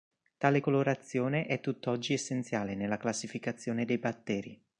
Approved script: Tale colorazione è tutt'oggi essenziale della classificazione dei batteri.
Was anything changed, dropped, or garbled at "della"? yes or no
yes